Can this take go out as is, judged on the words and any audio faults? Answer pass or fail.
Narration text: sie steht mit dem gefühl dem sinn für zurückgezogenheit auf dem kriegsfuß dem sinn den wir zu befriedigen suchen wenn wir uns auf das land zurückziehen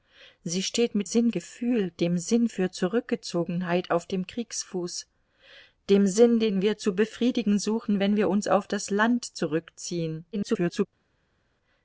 fail